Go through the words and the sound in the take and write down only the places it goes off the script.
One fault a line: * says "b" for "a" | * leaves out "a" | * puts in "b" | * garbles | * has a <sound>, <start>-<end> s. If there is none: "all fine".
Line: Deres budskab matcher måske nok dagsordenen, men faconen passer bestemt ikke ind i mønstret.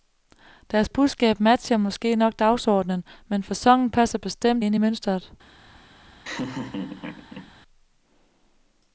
* leaves out "ikke"
* has a laugh, 6.2-7.5 s